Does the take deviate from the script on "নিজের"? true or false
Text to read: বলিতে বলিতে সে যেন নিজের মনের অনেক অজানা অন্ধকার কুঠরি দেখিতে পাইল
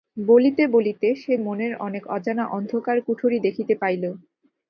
true